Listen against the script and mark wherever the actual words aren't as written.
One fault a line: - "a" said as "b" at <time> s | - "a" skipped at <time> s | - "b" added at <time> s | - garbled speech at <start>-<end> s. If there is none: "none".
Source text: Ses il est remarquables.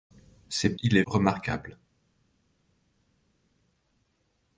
none